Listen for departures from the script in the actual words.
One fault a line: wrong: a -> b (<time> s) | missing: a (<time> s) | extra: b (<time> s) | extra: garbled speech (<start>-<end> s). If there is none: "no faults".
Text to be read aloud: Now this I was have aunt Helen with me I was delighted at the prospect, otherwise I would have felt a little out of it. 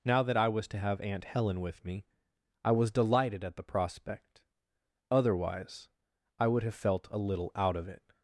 wrong: this -> that (0.2 s)
extra: to (0.7 s)